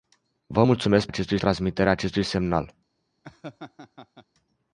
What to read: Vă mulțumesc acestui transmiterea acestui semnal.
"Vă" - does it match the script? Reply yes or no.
yes